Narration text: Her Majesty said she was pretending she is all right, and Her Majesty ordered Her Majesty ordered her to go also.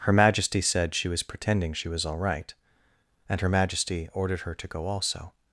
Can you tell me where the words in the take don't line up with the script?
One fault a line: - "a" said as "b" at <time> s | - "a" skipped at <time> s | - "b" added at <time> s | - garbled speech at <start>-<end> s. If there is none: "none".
- "is" said as "was" at 1.9 s
- "Majesty ordered her" skipped at 4.5 s